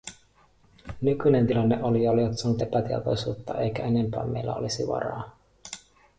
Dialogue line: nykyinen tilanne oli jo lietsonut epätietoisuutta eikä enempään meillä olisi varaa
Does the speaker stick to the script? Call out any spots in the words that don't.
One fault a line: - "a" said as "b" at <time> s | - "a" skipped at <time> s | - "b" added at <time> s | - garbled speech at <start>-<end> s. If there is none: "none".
none